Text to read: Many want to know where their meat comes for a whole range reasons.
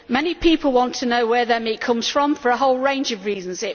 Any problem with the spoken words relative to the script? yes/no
yes